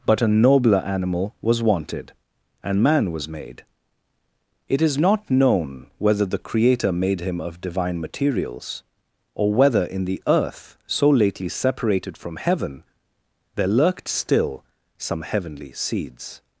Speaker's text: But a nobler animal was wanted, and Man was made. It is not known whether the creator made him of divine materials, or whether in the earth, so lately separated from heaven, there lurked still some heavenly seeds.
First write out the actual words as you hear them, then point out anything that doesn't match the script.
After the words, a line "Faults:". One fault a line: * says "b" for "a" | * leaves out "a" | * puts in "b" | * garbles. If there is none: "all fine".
But a nobler animal was wanted, and Man was made. It is not known whether the creator made him of divine materials, or whether in the earth, so lately separated from heaven, there lurked still some heavenly seeds.
Faults:
all fine